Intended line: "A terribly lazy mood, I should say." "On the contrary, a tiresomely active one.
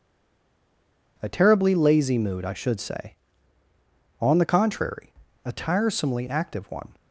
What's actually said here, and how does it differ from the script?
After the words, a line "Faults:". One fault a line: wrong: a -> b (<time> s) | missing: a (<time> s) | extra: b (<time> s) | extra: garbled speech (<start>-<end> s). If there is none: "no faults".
"A terribly lazy mood, I should say." "On the contrary, a tiresomely active one.
Faults:
no faults